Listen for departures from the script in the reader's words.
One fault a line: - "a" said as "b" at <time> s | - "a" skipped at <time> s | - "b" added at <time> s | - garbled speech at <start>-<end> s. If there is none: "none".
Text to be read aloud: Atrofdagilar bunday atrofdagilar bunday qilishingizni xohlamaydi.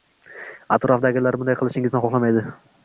- "atrofdagilar bunday" skipped at 1.6 s